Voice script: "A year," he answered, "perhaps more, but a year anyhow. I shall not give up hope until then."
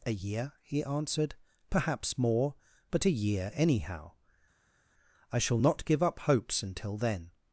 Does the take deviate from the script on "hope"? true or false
true